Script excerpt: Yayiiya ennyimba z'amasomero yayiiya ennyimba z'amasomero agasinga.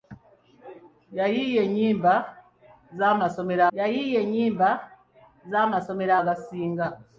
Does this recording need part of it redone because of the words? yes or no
no